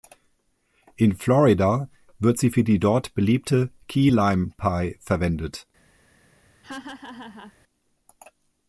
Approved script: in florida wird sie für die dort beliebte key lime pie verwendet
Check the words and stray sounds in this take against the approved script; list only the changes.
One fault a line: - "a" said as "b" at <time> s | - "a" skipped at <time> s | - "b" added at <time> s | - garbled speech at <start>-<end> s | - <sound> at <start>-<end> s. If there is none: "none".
- laugh at 6.6-7.5 s